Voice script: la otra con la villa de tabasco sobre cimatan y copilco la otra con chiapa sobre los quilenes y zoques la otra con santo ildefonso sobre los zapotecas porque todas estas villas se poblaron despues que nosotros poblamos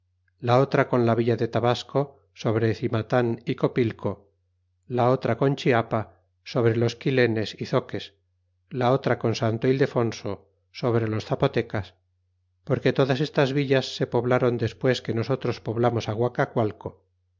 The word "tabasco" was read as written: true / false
true